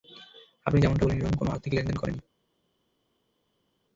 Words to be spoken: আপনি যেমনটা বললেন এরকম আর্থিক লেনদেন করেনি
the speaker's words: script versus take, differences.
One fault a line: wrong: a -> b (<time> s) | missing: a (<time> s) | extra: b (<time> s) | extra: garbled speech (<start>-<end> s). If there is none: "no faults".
extra: কোনো (1.4 s)